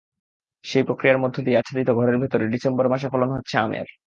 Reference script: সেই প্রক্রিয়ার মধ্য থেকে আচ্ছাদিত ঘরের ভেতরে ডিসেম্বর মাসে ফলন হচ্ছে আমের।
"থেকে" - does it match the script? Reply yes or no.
no